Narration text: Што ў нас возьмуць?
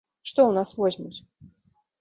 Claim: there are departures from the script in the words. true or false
false